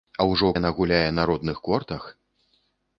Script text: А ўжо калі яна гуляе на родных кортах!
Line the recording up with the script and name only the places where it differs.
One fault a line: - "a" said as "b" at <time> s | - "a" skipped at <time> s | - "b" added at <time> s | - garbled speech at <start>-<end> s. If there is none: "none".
- "калі" skipped at 0.5 s